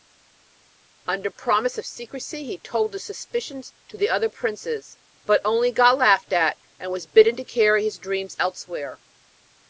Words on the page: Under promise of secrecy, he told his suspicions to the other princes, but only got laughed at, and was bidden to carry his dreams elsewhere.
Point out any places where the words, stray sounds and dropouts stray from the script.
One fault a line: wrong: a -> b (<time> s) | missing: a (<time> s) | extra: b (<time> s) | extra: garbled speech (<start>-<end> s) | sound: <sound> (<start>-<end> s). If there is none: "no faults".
no faults